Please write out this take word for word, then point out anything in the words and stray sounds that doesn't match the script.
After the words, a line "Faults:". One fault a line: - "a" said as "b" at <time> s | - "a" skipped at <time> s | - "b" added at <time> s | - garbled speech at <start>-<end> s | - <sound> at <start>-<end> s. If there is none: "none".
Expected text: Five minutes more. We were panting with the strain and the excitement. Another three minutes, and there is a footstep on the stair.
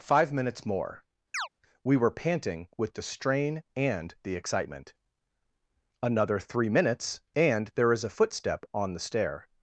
Five minutes more. We were panting with the strain and the excitement. Another three minutes, and there is a footstep on the stair.
Faults:
- chirp at 1.3-1.5 s